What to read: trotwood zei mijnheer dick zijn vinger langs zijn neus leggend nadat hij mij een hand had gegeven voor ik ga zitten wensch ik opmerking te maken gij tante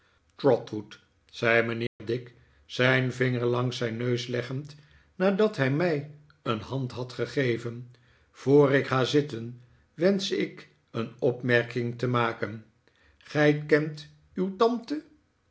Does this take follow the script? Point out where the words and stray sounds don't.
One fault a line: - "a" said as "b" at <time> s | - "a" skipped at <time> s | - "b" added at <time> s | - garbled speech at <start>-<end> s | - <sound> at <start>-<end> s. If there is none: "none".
- dropout at 1.9-2.0 s
- "een" added at 10.9 s
- "kent uw" added at 13.6 s